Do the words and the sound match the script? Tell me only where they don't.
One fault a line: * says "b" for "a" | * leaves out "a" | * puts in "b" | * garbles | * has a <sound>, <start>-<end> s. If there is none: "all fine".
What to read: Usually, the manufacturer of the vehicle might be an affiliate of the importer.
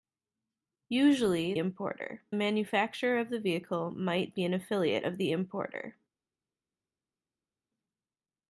* says "importer" for "the"